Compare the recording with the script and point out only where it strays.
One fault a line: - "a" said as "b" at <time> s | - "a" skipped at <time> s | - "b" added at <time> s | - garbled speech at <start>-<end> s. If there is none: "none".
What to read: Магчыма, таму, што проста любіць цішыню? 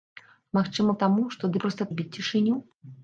none